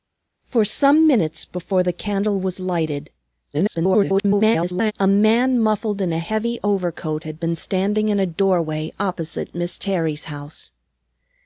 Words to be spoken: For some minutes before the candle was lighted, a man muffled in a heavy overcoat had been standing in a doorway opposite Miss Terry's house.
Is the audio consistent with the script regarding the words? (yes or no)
no